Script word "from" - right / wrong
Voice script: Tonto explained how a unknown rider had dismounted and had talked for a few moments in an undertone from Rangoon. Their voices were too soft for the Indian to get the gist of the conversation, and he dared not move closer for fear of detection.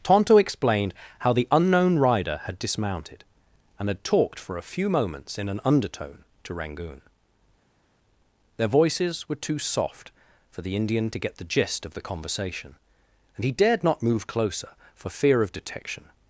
wrong